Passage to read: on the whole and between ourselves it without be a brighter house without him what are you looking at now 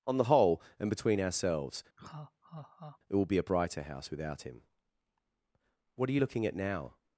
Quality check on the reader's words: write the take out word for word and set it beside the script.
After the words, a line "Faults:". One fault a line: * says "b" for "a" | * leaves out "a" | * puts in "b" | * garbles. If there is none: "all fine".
on the whole and between ourselves it will be a brighter house without him what are you looking at now
Faults:
* says "will" for "without"